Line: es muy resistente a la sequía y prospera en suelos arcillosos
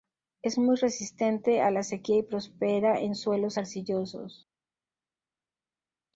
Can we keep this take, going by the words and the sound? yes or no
yes